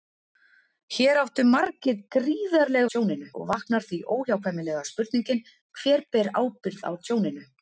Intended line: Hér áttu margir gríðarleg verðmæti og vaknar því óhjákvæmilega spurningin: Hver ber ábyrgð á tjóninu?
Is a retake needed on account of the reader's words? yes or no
yes